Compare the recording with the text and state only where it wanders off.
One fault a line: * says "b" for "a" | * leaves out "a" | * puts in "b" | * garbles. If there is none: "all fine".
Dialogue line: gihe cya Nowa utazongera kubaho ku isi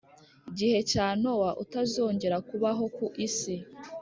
all fine